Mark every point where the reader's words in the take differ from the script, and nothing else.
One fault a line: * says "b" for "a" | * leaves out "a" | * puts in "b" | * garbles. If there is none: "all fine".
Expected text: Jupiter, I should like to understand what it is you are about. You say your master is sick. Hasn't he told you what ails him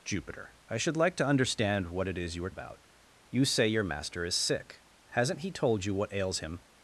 all fine